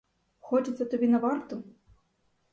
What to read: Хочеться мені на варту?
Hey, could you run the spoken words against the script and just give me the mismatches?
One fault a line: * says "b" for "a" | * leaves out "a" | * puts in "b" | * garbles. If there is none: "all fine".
* says "тобі" for "мені"